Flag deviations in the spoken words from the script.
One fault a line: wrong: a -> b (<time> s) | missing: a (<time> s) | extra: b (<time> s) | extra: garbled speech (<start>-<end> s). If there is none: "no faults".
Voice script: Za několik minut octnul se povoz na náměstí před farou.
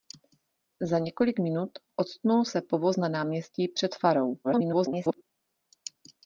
extra: garbled speech (4.4-5.2 s)